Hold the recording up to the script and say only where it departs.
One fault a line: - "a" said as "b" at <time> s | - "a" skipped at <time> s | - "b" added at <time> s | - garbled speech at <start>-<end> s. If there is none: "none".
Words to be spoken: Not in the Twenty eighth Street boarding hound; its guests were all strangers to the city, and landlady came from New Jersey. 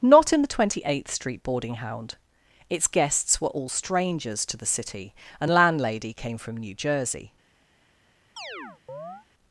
none